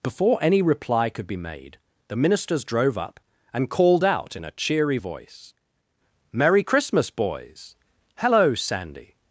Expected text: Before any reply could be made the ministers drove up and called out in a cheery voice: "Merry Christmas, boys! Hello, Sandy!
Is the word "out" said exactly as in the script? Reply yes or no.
yes